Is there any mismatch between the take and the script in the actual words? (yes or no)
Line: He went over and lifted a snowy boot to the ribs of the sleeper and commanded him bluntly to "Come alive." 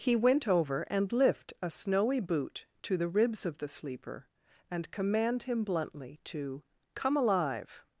yes